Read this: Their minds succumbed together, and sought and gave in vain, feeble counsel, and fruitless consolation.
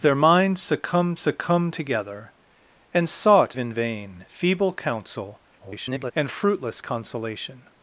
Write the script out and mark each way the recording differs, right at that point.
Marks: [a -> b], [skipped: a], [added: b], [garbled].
Their minds succumbed [added: succumbed] together, and sought [skipped: and gave] in vain, feeble counsel, [garbled] and fruitless consolation.